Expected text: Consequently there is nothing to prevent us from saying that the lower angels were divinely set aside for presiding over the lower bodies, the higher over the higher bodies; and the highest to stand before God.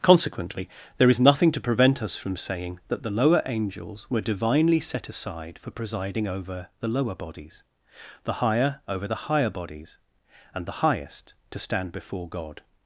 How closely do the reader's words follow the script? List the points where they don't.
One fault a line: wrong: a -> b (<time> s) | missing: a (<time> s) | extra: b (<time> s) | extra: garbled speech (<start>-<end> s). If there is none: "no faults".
no faults